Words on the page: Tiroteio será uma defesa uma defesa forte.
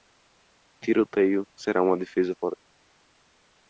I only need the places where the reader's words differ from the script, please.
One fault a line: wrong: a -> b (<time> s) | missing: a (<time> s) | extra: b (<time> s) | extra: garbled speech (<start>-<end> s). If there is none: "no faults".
missing: uma defesa (2.3 s)